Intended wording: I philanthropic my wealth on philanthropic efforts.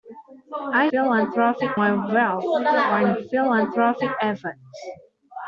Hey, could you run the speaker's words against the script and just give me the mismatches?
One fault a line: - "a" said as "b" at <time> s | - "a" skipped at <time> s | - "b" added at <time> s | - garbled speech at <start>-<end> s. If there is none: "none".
none